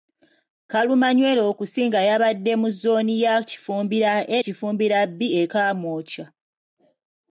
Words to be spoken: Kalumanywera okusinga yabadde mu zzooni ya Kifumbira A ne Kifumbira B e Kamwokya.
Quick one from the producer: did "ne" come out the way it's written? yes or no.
no